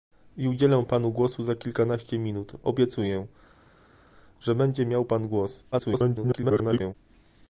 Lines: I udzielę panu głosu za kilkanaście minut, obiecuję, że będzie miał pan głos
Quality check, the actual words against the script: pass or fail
fail